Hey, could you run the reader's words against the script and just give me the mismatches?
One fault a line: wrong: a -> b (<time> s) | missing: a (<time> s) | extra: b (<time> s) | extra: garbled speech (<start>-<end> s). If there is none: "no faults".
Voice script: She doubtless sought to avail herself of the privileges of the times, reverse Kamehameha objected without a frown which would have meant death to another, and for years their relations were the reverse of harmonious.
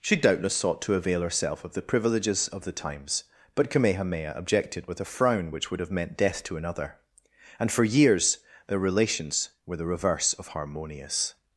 wrong: reverse -> but (3.5 s)
wrong: without -> with (4.9 s)